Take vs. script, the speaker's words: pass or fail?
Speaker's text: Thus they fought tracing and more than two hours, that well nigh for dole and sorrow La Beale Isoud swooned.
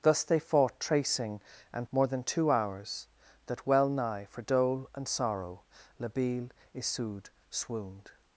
pass